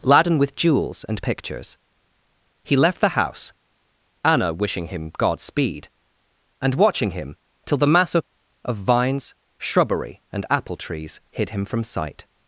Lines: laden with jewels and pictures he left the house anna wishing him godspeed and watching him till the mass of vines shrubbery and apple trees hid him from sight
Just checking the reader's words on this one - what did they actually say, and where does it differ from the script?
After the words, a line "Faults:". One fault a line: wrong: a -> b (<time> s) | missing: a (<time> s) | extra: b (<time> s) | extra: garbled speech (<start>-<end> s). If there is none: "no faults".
laden with jewels and pictures he left the house anna wishing him godspeed and watching him till the mass of of vines shrubbery and apple trees hid him from sight
Faults:
extra: of (8.6 s)